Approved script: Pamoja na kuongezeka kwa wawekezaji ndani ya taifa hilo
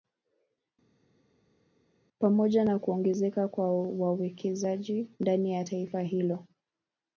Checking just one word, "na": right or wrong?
right